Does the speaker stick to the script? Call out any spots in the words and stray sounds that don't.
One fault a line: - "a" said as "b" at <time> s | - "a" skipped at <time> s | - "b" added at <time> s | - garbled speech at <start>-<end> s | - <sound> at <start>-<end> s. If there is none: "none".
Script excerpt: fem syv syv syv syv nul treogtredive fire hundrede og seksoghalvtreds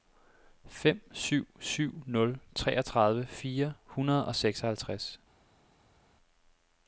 - "syv syv" skipped at 2.0 s